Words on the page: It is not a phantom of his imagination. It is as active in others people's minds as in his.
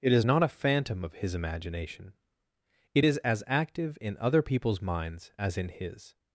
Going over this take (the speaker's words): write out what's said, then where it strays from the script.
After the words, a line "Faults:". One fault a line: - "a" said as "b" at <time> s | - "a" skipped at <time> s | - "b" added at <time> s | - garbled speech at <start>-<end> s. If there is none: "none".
It is not a phantom of his imagination. It is as active in other people's minds as in his.
Faults:
- "others" said as "other" at 4.2 s